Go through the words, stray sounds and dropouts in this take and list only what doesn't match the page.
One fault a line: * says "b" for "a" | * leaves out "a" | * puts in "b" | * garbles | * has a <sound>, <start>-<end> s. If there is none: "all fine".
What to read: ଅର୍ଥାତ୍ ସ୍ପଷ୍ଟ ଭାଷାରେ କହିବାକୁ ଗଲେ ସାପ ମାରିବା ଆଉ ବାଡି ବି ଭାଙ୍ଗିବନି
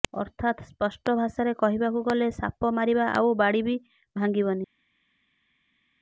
all fine